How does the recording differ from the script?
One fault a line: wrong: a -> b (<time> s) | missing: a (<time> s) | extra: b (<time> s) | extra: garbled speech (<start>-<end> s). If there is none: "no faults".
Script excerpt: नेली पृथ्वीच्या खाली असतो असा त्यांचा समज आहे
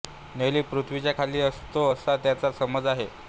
no faults